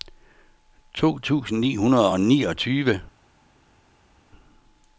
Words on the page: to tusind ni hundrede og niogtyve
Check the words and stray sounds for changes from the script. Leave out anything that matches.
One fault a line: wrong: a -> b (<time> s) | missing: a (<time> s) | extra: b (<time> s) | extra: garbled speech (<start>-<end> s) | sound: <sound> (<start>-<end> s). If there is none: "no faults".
no faults